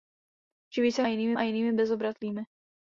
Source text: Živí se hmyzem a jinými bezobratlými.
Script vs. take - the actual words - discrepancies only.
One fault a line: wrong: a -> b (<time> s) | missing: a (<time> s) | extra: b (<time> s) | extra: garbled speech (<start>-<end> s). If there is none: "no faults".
wrong: hmyzem -> jinými (1.1 s)